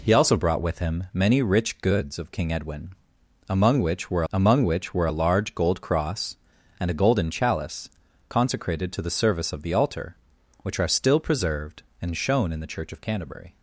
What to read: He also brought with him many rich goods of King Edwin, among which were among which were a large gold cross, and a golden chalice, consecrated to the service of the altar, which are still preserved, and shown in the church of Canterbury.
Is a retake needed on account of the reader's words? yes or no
no